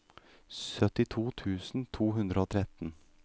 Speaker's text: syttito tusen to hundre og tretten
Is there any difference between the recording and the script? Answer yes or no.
no